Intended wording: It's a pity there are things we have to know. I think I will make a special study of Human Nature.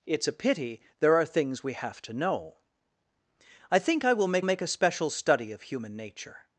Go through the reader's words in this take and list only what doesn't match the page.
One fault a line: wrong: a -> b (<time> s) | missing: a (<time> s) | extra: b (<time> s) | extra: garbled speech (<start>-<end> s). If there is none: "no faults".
extra: make (4.4 s)